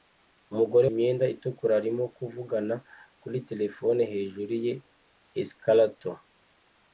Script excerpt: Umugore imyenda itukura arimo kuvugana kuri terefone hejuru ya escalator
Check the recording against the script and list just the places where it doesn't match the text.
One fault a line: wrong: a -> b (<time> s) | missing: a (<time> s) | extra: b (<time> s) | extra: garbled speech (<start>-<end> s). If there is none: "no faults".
no faults